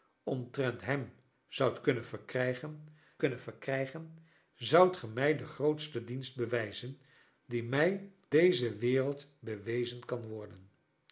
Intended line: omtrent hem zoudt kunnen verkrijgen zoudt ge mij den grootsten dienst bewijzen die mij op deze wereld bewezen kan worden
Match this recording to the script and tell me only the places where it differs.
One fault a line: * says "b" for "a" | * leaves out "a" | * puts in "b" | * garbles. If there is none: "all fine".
* puts in "kunnen verkrijgen"
* leaves out "op"